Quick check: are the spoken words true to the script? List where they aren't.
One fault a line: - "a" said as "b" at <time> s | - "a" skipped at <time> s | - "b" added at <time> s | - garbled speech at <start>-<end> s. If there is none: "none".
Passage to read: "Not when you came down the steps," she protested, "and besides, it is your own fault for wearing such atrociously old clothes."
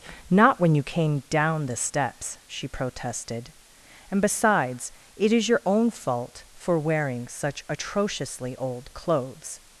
none